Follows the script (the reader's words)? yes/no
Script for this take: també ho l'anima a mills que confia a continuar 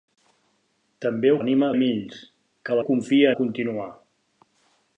yes